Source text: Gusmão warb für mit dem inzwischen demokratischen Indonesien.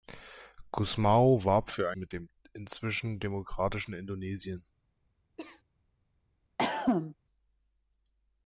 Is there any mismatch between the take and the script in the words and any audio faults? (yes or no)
yes